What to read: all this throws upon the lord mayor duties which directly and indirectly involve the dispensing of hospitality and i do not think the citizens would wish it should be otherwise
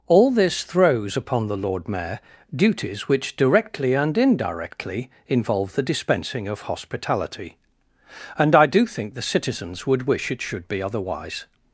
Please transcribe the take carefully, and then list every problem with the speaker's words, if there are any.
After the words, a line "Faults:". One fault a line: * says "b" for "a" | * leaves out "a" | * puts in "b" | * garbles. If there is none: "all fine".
all this throws upon the lord mayor duties which directly and indirectly involve the dispensing of hospitality and i do think the citizens would wish it should be otherwise
Faults:
* leaves out "not"